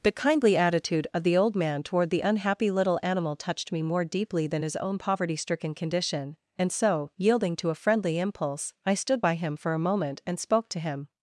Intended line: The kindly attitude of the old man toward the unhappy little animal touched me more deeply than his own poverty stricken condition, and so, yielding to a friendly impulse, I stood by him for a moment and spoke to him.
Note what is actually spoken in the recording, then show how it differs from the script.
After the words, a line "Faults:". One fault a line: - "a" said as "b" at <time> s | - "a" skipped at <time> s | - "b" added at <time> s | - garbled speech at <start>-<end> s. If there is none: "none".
The kindly attitude of the old man toward the unhappy little animal touched me more deeply than his own poverty stricken condition, and so, yielding to a friendly impulse, I stood by him for a moment and spoke to him.
Faults:
none